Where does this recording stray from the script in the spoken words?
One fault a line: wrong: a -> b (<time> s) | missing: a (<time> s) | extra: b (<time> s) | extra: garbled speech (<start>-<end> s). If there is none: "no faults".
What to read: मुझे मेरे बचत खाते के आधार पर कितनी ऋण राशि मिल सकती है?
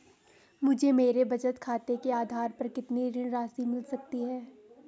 no faults